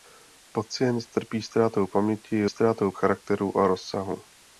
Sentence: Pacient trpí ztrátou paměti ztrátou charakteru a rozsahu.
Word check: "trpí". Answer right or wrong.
right